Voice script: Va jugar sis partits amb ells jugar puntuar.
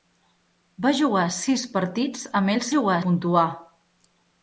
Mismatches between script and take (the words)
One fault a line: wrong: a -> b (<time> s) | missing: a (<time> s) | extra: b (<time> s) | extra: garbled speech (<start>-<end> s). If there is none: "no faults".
no faults